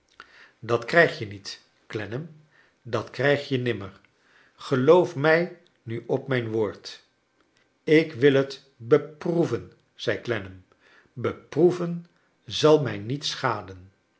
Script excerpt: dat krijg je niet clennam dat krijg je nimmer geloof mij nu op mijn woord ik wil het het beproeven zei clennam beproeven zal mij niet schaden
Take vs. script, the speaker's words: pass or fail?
fail